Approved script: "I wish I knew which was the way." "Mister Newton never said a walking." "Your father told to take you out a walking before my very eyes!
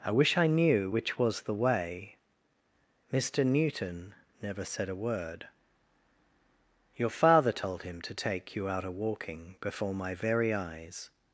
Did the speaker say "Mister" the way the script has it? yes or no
yes